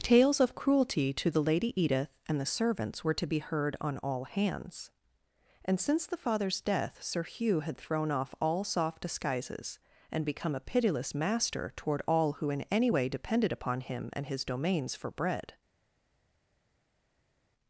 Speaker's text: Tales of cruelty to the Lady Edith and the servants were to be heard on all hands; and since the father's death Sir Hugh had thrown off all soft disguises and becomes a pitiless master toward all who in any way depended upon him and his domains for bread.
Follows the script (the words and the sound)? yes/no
no